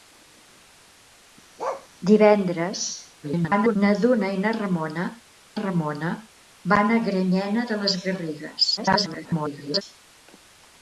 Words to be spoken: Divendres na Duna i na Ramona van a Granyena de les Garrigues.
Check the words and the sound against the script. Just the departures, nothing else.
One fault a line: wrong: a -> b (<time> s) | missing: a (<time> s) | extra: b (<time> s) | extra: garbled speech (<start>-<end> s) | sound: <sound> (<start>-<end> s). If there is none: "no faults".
sound: bark (1.6-1.9 s)
extra: garbled speech (3.2-3.8 s)
extra: Ramona (5.6 s)
extra: garbled speech (8.8-9.8 s)